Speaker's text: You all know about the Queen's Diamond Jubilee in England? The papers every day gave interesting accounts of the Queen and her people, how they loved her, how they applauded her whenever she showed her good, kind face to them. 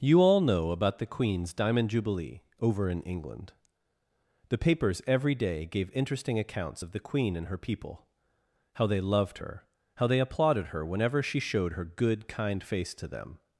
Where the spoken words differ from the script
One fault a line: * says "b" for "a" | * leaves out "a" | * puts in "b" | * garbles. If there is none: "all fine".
* puts in "over"